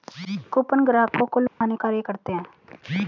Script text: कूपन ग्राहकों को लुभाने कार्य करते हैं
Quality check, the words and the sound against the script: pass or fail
fail